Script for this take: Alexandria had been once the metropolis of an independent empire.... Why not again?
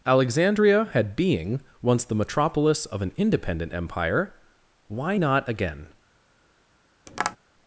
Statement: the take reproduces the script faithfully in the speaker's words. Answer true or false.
false